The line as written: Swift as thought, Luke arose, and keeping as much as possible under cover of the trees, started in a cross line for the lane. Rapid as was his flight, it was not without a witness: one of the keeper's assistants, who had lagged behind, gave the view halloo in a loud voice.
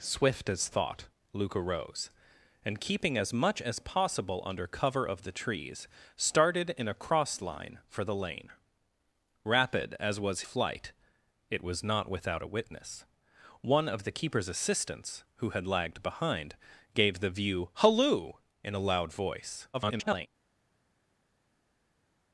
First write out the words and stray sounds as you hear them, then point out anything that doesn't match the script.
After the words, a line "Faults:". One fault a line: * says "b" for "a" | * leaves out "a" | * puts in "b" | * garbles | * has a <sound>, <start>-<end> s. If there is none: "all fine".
Swift as thought, Luke arose, and keeping as much as possible under cover of the trees, started in a cross line for the lane. Rapid as was flight, it was not without a witness: one of the keeper's assistants, who had lagged behind, gave the view halloo in a loud voice. [garbled]
Faults:
* leaves out "his"
* garbles